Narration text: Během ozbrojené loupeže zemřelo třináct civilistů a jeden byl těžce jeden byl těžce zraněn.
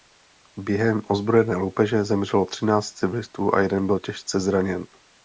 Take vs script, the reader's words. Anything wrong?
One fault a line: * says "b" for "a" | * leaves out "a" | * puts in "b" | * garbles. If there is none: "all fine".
* leaves out "jeden byl těžce"